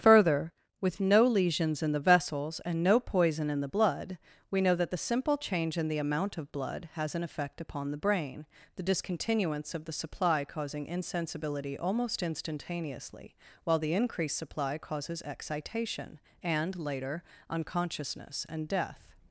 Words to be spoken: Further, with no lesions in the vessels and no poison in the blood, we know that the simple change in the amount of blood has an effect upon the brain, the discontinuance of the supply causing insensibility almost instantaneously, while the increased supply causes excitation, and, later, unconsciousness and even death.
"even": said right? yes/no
no